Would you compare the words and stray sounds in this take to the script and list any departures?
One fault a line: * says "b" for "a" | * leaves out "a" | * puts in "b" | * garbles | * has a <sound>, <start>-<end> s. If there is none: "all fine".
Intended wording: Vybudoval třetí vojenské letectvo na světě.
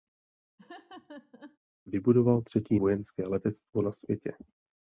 * has a laugh, 0.6-1.6 s